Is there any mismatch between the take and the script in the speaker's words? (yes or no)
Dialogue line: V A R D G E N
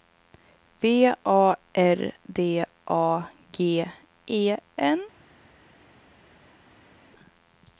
yes